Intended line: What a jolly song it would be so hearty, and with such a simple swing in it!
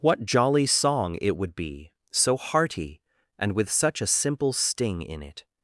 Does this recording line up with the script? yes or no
no